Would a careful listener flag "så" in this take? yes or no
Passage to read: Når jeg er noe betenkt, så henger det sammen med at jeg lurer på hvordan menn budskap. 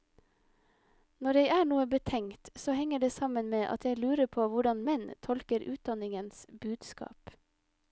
no